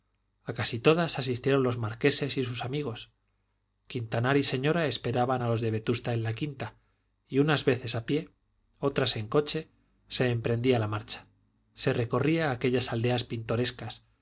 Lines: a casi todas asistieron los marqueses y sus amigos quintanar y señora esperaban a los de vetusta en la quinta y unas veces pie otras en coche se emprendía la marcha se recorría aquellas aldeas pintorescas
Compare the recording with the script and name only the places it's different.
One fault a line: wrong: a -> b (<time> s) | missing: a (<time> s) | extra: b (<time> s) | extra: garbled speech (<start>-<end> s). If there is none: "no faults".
extra: a (8.0 s)